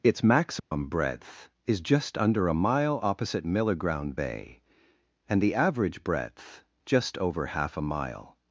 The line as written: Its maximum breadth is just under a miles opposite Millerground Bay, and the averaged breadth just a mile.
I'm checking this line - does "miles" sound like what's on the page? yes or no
no